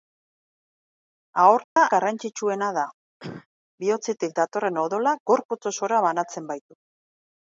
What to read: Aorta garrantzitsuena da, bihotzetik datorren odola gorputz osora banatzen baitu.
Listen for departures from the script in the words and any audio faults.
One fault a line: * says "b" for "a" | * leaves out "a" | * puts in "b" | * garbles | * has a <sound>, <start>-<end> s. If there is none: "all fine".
* has a dropout, 1.6-1.8 s
* has a cough, 3.2-3.5 s